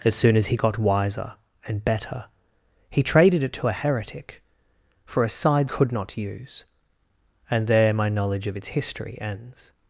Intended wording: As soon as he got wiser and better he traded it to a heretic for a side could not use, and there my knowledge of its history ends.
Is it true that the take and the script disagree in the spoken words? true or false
false